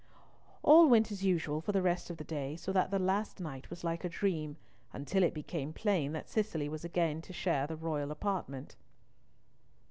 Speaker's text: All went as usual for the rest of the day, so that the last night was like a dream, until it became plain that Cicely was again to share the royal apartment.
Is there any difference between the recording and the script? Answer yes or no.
no